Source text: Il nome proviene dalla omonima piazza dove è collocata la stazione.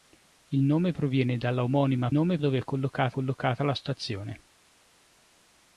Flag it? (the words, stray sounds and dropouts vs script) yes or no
yes